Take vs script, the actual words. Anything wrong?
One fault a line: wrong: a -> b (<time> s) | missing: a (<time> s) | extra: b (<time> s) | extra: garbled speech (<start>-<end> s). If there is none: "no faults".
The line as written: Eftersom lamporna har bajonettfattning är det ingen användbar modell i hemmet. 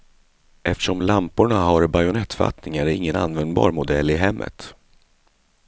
no faults